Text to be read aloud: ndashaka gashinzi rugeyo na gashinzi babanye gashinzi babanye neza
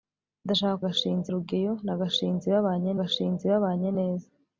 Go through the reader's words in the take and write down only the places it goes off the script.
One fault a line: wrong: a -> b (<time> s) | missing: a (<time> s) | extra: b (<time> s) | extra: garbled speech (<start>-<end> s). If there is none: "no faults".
no faults